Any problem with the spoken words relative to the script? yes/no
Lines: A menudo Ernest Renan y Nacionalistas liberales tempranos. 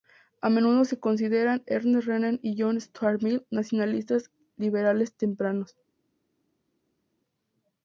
yes